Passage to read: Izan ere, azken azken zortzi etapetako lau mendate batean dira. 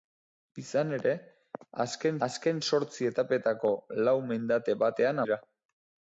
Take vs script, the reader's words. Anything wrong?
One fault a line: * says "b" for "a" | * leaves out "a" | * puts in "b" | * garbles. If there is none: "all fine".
all fine